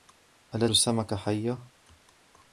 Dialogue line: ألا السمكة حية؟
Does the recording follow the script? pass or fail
pass